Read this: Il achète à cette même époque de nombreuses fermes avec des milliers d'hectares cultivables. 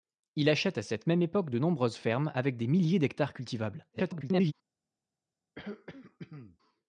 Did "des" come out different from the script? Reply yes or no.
no